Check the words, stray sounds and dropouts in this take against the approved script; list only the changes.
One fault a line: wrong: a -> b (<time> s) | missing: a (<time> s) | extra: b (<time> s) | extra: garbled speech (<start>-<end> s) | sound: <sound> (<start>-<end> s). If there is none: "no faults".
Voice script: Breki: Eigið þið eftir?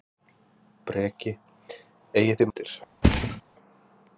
sound: thud (3.0-3.4 s)